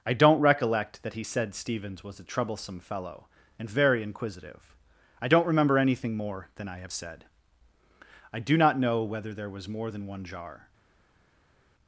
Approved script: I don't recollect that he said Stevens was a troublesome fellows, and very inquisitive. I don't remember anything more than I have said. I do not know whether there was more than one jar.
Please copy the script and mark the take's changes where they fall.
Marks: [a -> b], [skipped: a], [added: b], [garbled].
I don't recollect that he said Stevens was a troublesome [fellows, -> fellow] and very inquisitive. I don't remember anything more than I have said. I do not know whether there was more than one jar.